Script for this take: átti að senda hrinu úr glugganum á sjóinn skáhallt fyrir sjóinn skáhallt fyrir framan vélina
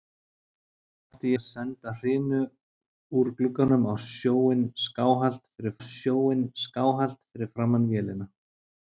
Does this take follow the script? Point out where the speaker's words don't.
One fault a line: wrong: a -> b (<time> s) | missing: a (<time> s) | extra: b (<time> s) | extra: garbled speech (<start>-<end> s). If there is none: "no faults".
no faults